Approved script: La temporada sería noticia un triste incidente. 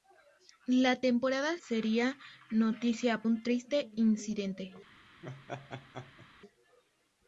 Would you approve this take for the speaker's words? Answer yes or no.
yes